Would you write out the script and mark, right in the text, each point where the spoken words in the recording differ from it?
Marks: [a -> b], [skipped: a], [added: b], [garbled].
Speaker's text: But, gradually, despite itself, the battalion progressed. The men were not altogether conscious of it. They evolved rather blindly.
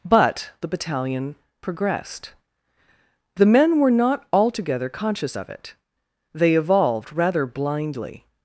But, [skipped: gradually, despite itself,] the battalion progressed. The men were not altogether conscious of it. They evolved rather blindly.